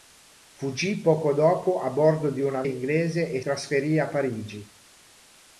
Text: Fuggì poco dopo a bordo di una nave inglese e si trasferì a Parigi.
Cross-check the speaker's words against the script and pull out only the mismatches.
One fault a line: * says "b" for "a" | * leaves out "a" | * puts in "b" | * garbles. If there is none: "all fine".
* leaves out "nave"
* leaves out "si"